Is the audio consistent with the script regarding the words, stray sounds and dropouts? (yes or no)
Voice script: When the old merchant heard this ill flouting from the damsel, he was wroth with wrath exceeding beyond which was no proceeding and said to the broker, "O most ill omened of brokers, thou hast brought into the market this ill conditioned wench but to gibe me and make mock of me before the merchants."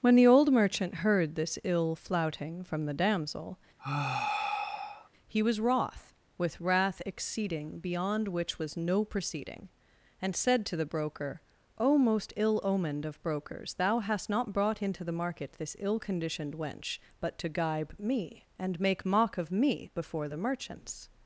no